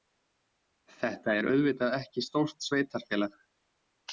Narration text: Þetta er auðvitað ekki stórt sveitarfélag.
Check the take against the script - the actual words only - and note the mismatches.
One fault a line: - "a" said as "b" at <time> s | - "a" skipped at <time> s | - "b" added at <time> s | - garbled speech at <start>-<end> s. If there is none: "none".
none